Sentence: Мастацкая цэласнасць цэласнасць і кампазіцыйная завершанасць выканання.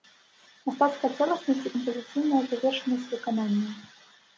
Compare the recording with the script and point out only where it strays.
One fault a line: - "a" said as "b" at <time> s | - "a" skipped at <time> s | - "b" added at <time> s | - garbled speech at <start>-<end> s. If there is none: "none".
- "цэласнасць" skipped at 1.6 s